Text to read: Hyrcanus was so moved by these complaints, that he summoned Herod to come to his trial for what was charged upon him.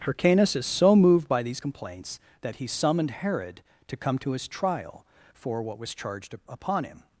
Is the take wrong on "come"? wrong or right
right